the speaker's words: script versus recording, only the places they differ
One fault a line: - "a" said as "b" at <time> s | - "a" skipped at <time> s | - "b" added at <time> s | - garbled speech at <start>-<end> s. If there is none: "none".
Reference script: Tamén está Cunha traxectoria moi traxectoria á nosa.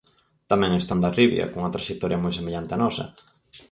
- "Hondarribia" added at 0.9 s
- "traxectoria" said as "semellante" at 2.4 s